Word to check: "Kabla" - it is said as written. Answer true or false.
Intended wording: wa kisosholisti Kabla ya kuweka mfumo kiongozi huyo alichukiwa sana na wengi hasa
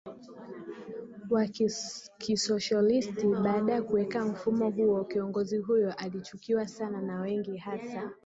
false